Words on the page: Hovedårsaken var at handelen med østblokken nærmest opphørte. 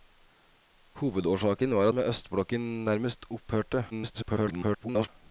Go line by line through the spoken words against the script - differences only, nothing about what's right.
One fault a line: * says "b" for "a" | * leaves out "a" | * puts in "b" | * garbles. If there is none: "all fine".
* leaves out "at handelen"
* garbles